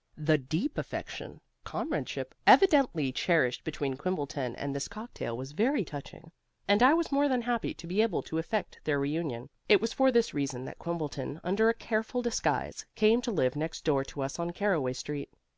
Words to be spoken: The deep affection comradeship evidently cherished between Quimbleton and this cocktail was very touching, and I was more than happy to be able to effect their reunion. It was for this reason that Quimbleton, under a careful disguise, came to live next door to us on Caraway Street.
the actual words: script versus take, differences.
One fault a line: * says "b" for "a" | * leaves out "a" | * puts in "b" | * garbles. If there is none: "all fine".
all fine